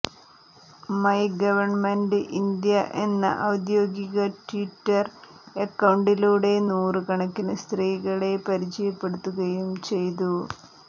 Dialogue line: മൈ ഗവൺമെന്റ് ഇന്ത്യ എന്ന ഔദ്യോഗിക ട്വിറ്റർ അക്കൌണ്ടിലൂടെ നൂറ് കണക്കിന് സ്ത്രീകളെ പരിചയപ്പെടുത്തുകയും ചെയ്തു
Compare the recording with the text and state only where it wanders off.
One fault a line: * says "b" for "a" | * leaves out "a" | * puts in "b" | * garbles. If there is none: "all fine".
all fine